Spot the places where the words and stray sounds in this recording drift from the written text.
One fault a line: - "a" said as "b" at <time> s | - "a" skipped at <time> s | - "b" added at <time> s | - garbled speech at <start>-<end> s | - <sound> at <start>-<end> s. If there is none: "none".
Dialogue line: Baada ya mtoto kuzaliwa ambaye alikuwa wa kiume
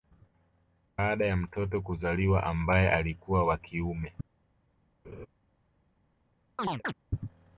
- laugh at 5.0-5.3 s
- chirp at 6.6-6.9 s